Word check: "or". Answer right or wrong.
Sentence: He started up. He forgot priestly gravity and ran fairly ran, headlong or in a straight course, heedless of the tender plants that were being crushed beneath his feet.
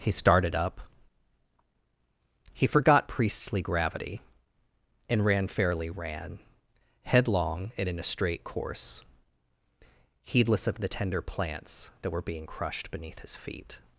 wrong